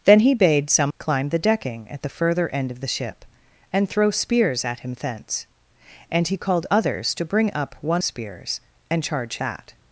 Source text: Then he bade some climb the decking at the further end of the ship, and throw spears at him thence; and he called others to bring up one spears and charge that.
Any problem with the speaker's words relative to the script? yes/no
no